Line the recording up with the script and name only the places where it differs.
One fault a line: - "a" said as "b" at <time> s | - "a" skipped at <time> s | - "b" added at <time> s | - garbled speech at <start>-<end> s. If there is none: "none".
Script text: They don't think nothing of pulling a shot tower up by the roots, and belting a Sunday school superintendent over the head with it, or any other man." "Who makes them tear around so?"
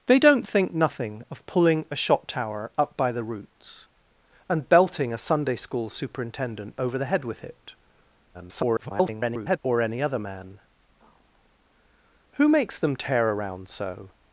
- garbled speech at 8.3-9.6 s